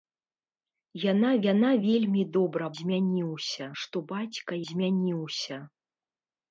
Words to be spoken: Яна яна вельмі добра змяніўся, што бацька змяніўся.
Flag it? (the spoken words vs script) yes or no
no